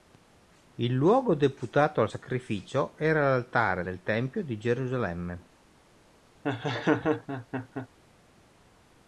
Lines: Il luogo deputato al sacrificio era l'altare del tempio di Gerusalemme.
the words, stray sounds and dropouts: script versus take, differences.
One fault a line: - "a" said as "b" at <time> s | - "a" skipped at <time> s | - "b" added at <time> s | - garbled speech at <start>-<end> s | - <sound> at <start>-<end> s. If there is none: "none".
- laugh at 6.4-7.9 s